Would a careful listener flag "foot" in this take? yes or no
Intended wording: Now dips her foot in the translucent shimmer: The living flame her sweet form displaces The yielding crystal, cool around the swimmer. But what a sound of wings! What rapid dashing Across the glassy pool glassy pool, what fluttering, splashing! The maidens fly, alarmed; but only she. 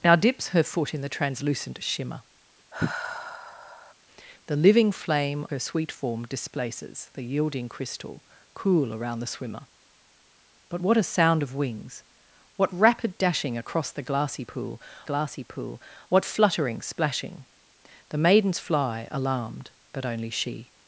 no